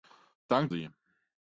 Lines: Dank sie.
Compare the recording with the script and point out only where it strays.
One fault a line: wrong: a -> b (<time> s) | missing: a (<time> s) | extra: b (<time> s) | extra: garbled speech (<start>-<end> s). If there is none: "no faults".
no faults